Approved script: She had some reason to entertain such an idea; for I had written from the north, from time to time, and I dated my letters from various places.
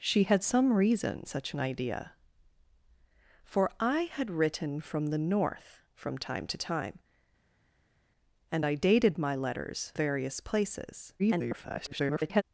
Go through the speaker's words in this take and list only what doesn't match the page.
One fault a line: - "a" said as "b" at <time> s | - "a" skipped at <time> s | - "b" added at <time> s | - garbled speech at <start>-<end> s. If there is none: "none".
- "to entertain" skipped at 1.2 s
- "from" skipped at 9.9 s
- garbled speech at 11.2-12.4 s